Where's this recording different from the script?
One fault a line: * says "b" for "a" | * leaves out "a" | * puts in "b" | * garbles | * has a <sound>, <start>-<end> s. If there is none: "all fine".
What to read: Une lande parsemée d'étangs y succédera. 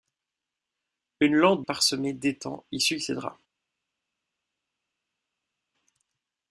all fine